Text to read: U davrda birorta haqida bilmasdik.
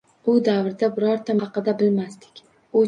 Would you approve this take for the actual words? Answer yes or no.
yes